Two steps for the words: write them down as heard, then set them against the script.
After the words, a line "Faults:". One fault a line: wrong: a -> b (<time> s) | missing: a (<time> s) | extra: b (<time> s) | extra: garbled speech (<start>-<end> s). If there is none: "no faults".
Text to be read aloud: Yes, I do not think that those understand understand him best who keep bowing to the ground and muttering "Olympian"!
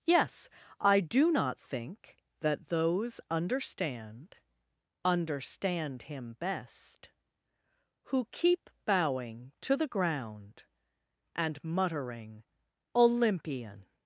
Yes, I do not think that those understand understand him best who keep bowing to the ground and muttering "Olympian"!
Faults:
no faults